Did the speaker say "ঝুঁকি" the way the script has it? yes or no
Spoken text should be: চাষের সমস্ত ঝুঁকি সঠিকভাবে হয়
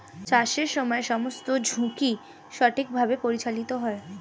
yes